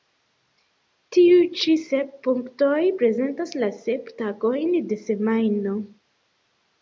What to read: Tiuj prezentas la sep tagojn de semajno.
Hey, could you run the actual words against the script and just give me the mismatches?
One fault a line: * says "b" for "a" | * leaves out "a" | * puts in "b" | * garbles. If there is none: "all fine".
* puts in "ĉi sep punktoj"